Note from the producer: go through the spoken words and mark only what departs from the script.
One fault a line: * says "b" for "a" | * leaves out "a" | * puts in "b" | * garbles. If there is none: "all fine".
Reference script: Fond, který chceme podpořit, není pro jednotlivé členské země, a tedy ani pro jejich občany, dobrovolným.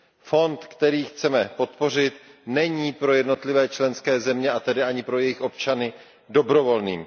all fine